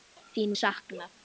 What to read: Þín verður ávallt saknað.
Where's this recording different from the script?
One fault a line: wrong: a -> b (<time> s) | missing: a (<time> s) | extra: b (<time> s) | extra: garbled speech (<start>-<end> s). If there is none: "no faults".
missing: verður ávallt (0.6 s)